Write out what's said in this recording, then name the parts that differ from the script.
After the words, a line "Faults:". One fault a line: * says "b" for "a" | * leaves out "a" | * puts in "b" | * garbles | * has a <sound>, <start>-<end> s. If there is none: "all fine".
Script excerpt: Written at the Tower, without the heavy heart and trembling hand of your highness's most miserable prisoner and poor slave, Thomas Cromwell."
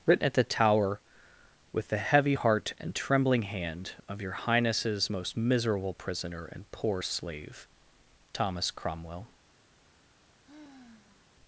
Written at the Tower, with the heavy heart and trembling hand of your highness's most miserable prisoner and poor slave, Thomas Cromwell."
Faults:
* says "with" for "without"
* has a sigh, 10.4-11.2 s